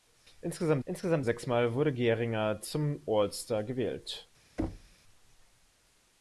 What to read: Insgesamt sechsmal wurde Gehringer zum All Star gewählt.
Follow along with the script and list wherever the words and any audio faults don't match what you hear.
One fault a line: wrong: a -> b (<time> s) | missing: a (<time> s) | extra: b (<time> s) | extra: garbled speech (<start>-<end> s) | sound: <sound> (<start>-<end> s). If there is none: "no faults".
extra: insgesamt (0.9 s)
sound: thud (4.6-5.0 s)